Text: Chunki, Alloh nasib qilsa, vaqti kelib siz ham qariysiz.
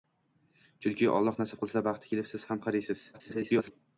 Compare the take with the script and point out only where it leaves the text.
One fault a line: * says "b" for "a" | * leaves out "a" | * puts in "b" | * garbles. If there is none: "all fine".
* garbles